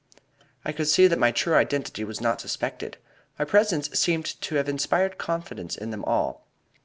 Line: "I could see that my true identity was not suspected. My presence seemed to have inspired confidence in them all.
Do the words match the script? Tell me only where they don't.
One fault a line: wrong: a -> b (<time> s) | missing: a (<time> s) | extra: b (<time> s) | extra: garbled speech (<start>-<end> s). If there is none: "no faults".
no faults